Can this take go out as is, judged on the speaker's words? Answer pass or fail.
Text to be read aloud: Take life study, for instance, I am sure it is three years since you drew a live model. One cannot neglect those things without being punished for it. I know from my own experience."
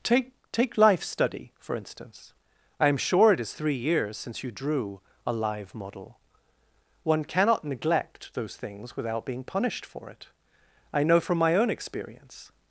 fail